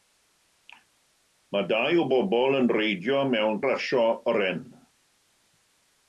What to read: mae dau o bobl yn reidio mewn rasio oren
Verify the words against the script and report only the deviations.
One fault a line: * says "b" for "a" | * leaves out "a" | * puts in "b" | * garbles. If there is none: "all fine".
all fine